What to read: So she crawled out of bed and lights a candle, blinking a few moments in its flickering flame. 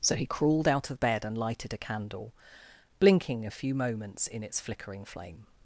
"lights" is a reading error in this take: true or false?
true